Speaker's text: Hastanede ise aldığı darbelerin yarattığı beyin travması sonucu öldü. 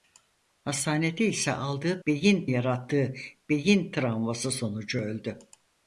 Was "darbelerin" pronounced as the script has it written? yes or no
no